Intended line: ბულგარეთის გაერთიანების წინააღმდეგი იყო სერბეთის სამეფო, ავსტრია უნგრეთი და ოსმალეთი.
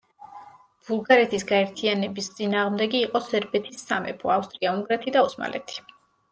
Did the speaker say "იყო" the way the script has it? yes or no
yes